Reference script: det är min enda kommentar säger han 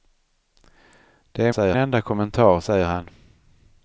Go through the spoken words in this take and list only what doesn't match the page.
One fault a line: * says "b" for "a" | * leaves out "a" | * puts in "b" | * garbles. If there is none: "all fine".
* says "säger" for "min"